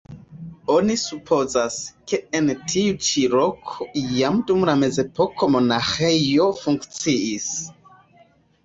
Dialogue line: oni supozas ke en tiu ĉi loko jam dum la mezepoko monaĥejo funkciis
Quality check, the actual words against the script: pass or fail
pass